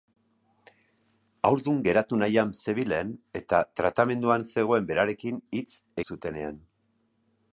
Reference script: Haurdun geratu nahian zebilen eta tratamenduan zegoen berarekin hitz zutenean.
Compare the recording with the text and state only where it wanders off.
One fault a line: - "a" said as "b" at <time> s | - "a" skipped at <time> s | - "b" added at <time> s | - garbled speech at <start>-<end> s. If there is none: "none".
none